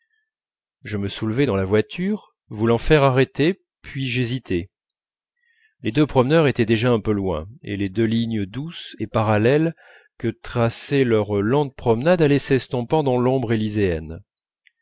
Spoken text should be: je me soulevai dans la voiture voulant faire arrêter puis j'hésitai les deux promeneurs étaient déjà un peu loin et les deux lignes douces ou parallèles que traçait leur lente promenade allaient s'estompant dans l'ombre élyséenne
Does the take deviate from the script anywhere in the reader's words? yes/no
yes